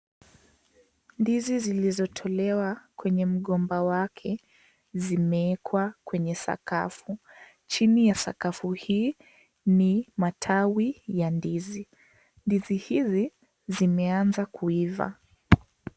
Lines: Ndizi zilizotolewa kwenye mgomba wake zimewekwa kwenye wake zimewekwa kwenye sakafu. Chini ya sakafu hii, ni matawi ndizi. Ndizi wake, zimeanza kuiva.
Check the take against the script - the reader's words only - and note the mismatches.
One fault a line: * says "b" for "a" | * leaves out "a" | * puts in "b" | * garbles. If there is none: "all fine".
* leaves out "wake zimewekwa kwenye"
* puts in "ya"
* says "hizi" for "wake"